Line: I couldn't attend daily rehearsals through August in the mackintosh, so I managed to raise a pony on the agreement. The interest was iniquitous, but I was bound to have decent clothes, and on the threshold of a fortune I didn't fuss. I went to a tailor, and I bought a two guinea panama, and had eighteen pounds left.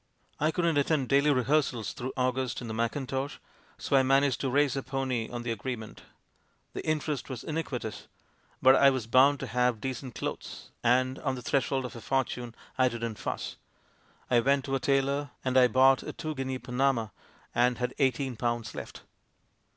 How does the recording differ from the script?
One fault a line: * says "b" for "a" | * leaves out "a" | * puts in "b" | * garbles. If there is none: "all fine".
all fine